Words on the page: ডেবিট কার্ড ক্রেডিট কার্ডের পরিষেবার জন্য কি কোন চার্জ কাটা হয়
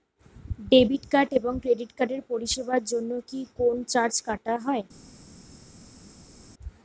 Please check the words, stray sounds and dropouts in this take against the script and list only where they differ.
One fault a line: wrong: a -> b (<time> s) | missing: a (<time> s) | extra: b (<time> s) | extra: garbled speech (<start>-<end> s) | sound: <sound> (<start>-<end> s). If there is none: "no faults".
extra: এবং (1.4 s)